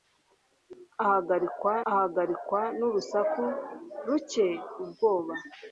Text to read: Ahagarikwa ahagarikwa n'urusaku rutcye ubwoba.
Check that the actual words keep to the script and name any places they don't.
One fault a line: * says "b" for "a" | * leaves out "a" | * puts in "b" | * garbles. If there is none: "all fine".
all fine